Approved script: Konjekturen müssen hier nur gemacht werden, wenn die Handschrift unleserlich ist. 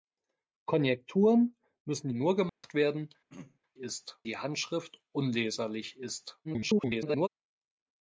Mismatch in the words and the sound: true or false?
true